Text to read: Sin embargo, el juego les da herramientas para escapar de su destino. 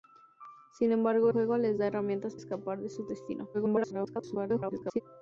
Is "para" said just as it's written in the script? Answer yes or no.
no